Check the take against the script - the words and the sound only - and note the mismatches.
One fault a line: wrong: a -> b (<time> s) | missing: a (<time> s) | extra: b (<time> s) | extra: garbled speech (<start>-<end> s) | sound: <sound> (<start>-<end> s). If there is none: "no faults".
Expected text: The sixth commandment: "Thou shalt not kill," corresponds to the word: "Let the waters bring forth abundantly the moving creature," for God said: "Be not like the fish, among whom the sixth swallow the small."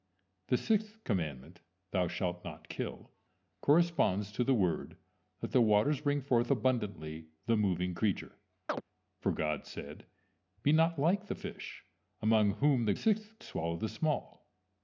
sound: chirp (8.7-8.8 s)